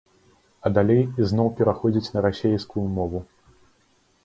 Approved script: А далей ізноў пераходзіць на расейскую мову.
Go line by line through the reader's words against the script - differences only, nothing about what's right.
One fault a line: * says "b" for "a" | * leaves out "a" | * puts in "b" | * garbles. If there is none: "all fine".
all fine